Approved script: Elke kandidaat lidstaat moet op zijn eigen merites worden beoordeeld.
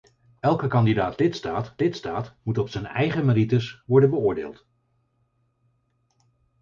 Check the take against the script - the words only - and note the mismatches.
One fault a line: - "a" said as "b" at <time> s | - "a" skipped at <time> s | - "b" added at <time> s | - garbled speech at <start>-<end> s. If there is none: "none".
- "lidstaat" added at 1.8 s